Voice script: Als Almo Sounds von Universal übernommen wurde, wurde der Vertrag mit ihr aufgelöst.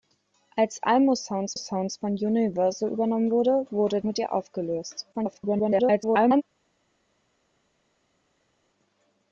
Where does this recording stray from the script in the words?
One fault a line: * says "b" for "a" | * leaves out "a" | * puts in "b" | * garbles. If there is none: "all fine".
* puts in "Sounds"
* leaves out "der Vertrag"
* garbles